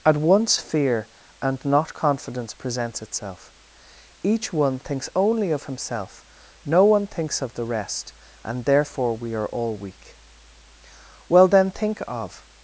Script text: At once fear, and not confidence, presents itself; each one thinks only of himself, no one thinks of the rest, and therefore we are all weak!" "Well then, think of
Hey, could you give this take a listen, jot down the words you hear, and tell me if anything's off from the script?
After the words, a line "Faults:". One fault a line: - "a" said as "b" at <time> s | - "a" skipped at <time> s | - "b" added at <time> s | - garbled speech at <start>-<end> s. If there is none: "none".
At once fear, and not confidence, presents itself; each one thinks only of himself, no one thinks of the rest, and therefore we are all weak!" "Well then, think of
Faults:
none